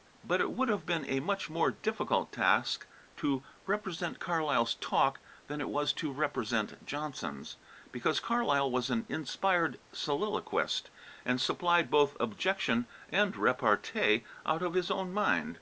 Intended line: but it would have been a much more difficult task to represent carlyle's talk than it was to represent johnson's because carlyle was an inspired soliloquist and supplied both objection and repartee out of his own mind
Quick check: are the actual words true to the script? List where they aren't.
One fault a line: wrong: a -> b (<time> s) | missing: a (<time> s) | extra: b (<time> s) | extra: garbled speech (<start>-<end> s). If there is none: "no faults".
no faults